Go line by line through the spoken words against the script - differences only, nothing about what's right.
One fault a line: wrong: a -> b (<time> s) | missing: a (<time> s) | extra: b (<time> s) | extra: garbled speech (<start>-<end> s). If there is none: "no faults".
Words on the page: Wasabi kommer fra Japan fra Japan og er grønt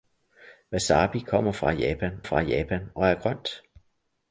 no faults